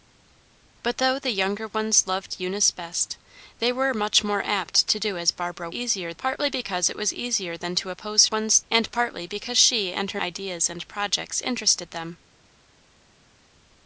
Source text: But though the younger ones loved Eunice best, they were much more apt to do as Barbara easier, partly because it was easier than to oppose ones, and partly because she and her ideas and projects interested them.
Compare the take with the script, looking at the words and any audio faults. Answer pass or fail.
pass